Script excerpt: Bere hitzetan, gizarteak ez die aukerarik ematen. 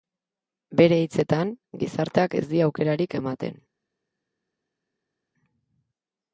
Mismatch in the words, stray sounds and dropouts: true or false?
false